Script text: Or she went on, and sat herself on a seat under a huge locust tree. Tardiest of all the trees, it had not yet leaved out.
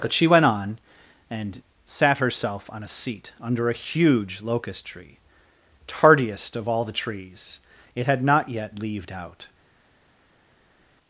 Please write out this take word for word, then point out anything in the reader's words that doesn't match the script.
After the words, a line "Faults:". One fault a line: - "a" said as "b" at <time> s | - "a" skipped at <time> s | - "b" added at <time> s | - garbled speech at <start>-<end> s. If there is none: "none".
But she went on, and sat herself on a seat under a huge locust tree. Tardiest of all the trees, it had not yet leaved out.
Faults:
- "Or" said as "But" at 0.0 s